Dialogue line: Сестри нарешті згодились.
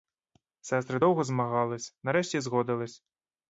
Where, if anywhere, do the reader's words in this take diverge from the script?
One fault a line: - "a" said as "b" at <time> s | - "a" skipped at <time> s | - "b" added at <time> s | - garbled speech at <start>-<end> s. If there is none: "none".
- "довго змагались" added at 1.0 s